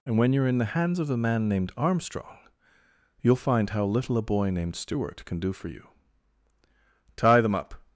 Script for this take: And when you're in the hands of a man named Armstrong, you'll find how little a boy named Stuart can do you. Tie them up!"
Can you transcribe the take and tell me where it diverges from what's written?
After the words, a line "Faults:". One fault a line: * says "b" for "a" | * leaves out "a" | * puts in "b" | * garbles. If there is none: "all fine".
And when you're in the hands of a man named Armstrong, you'll find how little a boy named Stuart can do for you. Tie them up!"
Faults:
* puts in "for"